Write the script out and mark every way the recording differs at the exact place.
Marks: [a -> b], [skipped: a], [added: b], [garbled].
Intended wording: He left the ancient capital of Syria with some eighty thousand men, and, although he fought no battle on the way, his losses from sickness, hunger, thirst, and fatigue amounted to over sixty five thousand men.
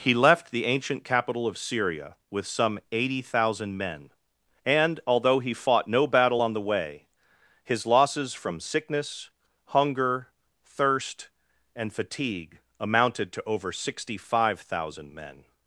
He left the ancient capital of Syria with some eighty thousand men, and, although he fought no battle on the way, his losses from sickness, hunger, thirst, and fatigue amounted to over sixty five thousand men.